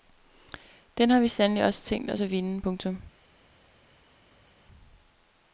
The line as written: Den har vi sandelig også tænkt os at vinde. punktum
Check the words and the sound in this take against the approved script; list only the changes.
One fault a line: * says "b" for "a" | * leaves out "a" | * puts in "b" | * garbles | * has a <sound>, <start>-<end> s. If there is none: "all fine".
all fine